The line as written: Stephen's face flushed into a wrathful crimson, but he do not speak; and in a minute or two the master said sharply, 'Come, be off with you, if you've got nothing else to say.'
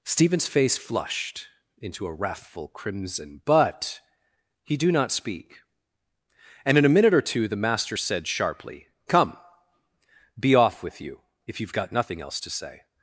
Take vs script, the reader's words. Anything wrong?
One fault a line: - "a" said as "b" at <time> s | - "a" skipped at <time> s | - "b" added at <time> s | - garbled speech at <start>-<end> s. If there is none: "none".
none